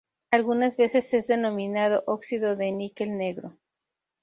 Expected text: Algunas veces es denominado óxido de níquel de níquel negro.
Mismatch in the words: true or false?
true